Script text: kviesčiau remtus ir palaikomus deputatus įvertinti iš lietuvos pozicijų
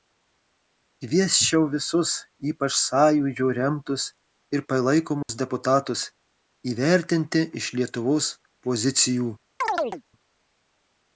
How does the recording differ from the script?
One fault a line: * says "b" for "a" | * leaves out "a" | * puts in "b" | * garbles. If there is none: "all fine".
* puts in "visus ypač sąjūdžio"